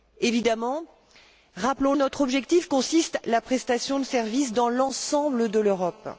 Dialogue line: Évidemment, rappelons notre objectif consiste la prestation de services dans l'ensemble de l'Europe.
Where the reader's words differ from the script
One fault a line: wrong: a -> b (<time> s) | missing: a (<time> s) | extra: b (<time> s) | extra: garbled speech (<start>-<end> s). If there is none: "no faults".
no faults